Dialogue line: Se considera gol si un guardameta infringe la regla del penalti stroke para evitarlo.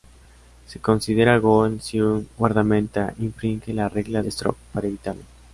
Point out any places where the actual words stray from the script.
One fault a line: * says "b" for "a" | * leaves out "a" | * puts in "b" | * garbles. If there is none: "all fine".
* leaves out "del penalti"